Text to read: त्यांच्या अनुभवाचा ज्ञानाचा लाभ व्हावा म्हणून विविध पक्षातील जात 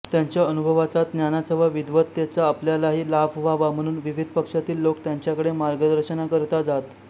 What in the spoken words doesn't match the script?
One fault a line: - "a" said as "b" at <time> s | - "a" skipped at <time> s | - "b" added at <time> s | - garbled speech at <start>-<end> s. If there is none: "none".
- "व विद्वत्तेचा आपल्यालाही" added at 1.6 s
- "लोक त्यांच्याकडे मार्गदर्शनाकरिता" added at 4.8 s